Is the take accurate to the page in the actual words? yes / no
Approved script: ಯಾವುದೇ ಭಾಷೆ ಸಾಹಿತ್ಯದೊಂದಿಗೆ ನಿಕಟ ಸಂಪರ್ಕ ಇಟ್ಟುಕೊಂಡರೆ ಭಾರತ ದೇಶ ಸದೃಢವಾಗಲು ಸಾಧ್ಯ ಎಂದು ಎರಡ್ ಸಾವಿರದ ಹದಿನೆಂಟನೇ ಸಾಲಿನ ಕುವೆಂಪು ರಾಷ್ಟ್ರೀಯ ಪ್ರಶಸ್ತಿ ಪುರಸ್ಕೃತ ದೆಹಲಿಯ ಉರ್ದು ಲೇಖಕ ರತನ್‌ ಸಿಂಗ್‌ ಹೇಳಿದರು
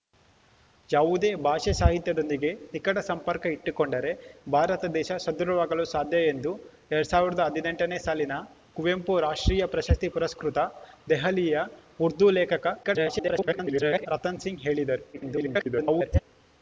no